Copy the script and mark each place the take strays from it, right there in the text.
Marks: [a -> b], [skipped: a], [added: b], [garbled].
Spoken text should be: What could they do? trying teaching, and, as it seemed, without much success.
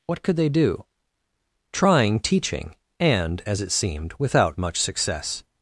What could they do? trying teaching, and, as it seemed, without much success.